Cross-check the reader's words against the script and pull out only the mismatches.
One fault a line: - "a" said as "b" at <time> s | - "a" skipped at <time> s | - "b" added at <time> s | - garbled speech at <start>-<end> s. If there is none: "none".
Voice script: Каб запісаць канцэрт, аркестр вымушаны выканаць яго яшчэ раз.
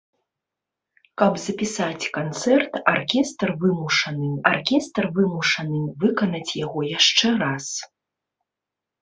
- "аркестр вымушаны" added at 4.5 s